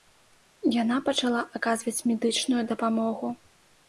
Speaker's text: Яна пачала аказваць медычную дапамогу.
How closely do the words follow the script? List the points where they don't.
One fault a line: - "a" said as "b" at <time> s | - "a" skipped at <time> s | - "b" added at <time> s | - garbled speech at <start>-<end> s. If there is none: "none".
none